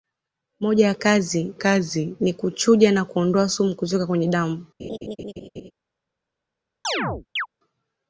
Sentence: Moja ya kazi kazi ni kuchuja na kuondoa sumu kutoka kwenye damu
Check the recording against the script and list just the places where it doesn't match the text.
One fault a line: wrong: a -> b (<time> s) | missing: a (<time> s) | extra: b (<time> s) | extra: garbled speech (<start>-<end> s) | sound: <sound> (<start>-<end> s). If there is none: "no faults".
sound: laugh (4.8-5.7 s)
sound: chirp (6.8-7.5 s)